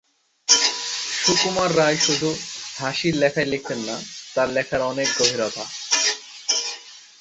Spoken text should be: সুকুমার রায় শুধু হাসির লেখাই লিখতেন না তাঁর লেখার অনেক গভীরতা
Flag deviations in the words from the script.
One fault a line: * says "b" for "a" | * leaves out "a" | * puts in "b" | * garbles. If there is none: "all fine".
all fine